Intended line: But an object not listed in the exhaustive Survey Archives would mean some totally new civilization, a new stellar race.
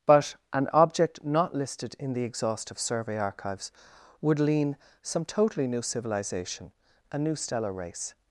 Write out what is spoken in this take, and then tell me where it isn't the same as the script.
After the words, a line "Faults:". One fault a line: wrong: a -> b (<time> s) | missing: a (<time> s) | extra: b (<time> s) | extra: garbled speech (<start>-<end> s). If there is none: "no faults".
But an object not listed in the exhaustive Survey Archives would lean some totally new civilization, a new stellar race.
Faults:
wrong: mean -> lean (4.4 s)